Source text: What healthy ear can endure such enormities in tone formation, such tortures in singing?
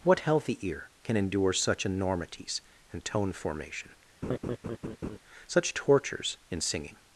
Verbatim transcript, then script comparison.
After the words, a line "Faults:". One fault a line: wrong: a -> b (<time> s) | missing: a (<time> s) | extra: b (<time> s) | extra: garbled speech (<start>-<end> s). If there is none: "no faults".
What healthy ear can endure such enormities and tone formation, such tortures in singing?
Faults:
wrong: in -> and (2.9 s)